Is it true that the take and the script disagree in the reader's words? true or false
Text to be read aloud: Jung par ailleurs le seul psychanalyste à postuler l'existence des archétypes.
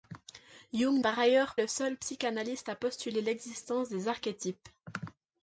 false